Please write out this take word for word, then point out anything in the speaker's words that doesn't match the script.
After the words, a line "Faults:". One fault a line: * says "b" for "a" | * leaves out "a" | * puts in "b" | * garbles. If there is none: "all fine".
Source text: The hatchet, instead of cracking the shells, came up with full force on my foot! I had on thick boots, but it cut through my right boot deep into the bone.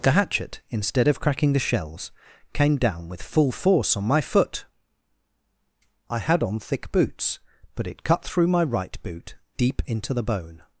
The hatchet, instead of cracking the shells, came down with full force on my foot! I had on thick boots, but it cut through my right boot deep into the bone.
Faults:
* says "down" for "up"